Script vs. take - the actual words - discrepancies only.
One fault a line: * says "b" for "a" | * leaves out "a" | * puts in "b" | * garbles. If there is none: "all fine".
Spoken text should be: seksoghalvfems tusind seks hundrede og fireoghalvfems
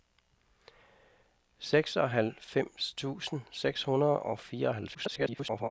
* garbles